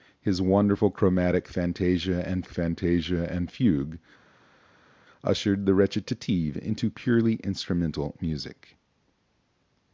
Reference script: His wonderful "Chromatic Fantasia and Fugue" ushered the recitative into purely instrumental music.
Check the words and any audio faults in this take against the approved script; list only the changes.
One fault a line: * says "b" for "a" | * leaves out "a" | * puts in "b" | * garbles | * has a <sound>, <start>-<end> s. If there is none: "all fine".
* puts in "Fantasia and"